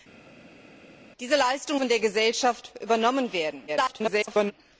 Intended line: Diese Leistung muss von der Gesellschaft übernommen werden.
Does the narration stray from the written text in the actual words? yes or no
yes